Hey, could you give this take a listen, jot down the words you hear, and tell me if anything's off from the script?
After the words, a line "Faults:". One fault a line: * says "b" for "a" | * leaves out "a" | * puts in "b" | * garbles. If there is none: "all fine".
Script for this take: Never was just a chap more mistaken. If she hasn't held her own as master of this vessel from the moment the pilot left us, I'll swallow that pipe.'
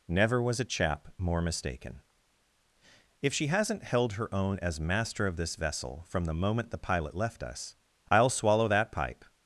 Never was a chap more mistaken. If she hasn't held her own as master of this vessel from the moment the pilot left us, I'll swallow that pipe.'
Faults:
* leaves out "just"